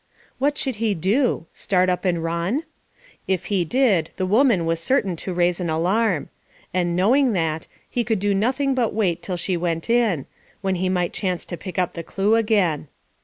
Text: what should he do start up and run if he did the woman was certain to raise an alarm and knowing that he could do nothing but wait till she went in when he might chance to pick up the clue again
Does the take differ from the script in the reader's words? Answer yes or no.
no